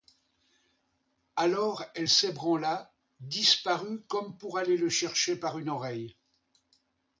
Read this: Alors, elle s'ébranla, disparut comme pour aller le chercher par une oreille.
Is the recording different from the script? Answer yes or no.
no